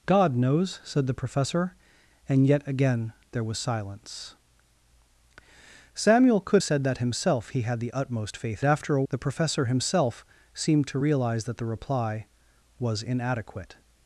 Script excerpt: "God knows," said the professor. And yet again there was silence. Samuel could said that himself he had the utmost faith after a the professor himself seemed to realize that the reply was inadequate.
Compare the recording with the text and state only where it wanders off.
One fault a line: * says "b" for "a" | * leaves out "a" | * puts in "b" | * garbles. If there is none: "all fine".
all fine